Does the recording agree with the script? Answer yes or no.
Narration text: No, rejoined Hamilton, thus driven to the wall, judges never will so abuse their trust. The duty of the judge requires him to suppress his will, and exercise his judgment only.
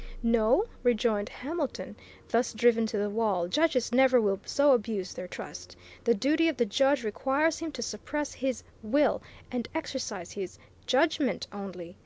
yes